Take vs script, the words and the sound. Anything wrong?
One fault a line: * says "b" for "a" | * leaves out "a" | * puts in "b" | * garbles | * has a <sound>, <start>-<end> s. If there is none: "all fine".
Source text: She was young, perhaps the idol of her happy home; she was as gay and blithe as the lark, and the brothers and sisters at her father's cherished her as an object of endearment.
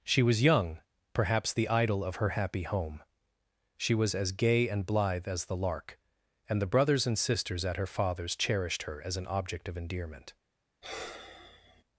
* has a sigh, 10.8-11.8 s